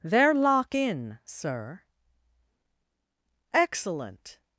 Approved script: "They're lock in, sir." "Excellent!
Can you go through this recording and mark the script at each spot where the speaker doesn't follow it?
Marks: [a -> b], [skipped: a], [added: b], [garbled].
"They're lock in, sir." "Excellent!